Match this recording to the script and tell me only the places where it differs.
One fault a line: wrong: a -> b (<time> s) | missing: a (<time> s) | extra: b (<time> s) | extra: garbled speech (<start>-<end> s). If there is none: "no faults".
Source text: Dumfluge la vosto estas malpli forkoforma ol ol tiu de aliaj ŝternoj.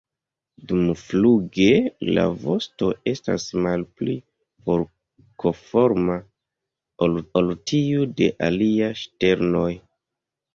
no faults